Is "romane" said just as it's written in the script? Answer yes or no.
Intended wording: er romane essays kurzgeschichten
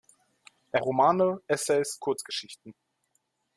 yes